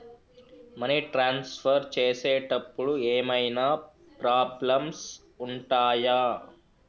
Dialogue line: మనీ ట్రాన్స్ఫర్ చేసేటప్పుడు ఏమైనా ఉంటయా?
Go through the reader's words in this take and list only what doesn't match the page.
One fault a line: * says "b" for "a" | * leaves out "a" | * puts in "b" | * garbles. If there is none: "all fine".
* puts in "ప్రాబ్లమ్స్"